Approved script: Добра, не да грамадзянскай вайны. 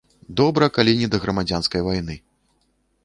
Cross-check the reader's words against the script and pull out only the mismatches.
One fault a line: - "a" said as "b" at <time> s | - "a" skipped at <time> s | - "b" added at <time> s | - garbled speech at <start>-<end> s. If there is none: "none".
- "калі" added at 0.8 s